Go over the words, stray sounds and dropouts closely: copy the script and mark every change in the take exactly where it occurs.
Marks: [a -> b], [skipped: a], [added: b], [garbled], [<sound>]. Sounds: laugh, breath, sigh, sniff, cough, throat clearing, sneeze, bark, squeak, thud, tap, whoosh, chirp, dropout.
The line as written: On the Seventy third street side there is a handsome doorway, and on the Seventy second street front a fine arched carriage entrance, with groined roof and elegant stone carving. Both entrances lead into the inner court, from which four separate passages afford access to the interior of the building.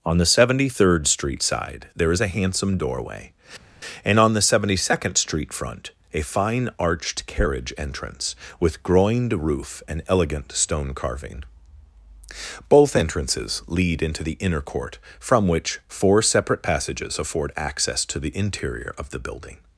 On the Seventy third street side there is a handsome doorway, and on the Seventy second street front a fine arched carriage entrance, with groined roof and elegant stone carving. Both entrances lead into the inner court, from which four separate passages afford access to the interior of the building.